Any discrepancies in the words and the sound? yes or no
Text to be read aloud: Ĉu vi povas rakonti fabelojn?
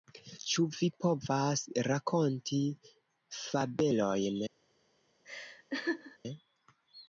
yes